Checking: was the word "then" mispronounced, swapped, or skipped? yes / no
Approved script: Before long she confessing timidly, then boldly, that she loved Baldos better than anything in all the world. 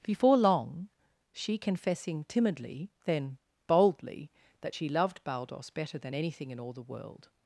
no